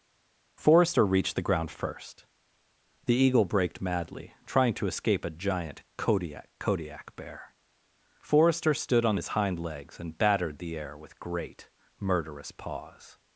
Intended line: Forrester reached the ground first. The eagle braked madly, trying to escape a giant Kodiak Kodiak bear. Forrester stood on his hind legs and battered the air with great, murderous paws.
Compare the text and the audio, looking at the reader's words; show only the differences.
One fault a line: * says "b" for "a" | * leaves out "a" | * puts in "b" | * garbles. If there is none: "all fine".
all fine